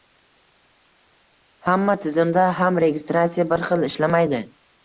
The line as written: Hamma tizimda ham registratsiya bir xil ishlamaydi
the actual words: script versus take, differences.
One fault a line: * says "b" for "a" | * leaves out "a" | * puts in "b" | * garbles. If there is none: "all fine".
all fine